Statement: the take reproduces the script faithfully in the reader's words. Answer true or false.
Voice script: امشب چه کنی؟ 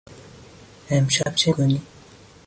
true